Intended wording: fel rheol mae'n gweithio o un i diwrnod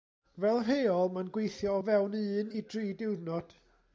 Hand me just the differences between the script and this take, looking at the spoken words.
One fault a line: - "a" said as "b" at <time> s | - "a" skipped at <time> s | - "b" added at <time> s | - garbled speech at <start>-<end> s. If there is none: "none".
- "fewn" added at 1.9 s
- "dri" added at 2.7 s